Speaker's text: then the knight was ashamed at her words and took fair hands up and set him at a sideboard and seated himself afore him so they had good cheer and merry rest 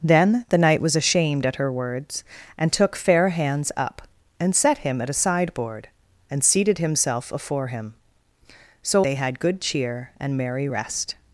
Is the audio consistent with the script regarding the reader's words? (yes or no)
yes